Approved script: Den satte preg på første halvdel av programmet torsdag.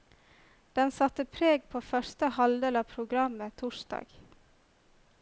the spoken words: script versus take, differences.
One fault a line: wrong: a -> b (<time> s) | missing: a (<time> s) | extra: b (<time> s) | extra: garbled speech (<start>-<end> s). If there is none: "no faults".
no faults